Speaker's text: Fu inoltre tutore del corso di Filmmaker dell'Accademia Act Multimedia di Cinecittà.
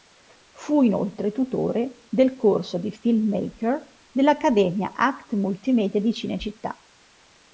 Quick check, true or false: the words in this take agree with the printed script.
true